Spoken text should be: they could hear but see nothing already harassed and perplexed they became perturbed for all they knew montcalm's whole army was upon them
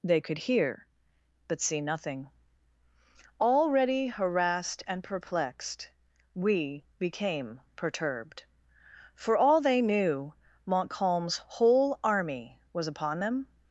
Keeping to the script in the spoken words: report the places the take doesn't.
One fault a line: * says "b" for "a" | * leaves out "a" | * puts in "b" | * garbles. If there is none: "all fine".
* says "we" for "they"